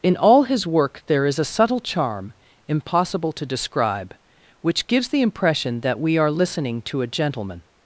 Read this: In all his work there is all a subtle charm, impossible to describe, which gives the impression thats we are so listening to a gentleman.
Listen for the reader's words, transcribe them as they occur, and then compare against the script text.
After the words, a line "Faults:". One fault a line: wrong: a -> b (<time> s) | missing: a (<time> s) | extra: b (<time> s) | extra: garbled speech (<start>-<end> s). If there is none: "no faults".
In all his work there is a subtle charm, impossible to describe, which gives the impression that we are listening to a gentleman.
Faults:
missing: all (1.4 s)
wrong: thats -> that (5.8 s)
missing: so (6.3 s)